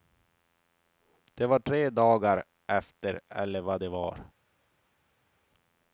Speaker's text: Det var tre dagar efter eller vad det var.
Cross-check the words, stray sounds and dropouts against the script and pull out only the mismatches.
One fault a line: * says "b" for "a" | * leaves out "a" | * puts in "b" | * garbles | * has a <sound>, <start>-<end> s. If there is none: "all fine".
all fine